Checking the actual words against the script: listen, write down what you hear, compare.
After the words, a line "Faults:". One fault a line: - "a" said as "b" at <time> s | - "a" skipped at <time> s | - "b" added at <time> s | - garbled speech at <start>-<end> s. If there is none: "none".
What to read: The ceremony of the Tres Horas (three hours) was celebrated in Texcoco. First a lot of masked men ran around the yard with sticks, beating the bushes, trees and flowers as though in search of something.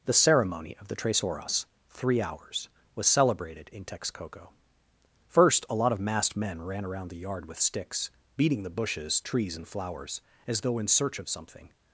The ceremony of the Tres Horas (three hours) was celebrated in Texcoco. First a lot of masked men ran around the yard with sticks, beating the bushes, trees and flowers as though in search of something.
Faults:
none